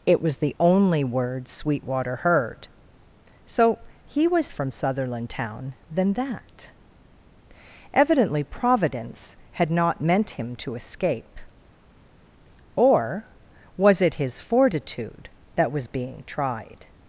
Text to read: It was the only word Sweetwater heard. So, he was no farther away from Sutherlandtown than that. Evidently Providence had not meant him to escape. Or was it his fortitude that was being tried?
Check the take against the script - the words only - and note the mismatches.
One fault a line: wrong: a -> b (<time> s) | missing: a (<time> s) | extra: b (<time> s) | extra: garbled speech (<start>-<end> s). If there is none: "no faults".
missing: no farther away (4.5 s)